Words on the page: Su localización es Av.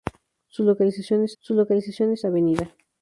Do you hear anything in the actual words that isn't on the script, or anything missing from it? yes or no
yes